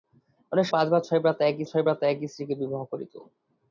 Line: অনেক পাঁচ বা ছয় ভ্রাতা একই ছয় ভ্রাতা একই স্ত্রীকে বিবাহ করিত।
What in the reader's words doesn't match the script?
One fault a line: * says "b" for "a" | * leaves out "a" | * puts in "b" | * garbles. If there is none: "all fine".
all fine